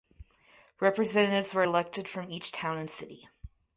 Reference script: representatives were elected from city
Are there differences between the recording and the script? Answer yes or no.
yes